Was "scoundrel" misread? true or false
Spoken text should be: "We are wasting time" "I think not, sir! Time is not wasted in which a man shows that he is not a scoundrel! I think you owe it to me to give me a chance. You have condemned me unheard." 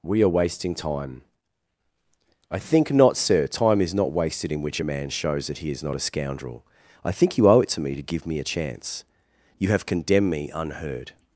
false